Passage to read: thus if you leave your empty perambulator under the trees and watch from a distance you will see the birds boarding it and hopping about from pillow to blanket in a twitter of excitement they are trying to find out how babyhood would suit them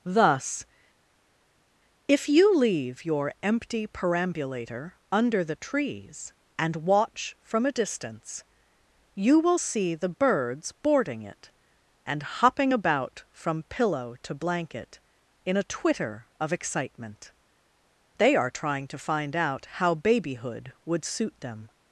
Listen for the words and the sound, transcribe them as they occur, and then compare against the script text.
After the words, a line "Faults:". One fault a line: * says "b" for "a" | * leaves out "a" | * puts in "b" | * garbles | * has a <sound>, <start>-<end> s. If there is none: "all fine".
thus if you leave your empty perambulator under the trees and watch from a distance you will see the birds boarding it and hopping about from pillow to blanket in a twitter of excitement they are trying to find out how babyhood would suit them
Faults:
all fine